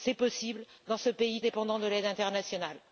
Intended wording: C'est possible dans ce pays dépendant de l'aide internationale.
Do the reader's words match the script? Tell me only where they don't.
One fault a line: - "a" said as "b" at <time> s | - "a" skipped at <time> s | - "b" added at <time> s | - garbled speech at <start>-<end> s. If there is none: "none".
none